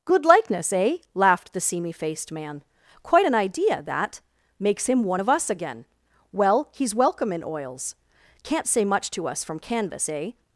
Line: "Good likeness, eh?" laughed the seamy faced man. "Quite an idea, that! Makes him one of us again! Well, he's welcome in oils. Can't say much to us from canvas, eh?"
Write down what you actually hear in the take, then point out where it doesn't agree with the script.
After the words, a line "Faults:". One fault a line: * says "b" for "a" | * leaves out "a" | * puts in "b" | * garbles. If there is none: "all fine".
"Good likeness, eh?" laughed the seamy faced man. "Quite an idea, that! Makes him one of us again! Well, he's welcome in oils. Can't say much to us from canvas, eh?"
Faults:
all fine